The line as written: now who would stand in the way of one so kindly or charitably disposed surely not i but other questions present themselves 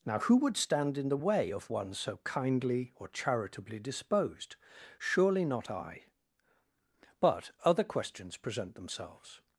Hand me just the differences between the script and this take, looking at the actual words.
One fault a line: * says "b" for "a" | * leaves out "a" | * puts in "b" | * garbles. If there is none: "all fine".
all fine